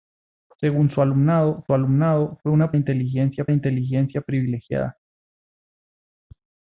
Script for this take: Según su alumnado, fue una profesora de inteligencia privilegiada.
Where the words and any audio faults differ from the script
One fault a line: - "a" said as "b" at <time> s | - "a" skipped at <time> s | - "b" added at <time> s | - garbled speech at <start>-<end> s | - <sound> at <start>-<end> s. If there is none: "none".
- "alumnado" added at 1.7 s
- "profesora" said as "inteligencia" at 2.8 s